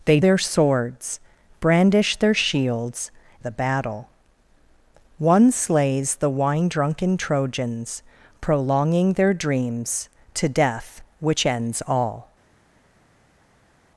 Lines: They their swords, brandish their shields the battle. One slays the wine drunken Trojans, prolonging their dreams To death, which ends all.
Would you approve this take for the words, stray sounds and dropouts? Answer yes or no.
yes